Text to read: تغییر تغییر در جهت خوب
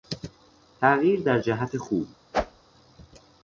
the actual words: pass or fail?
fail